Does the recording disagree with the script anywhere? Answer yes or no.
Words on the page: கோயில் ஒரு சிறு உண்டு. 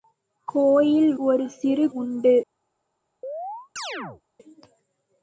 no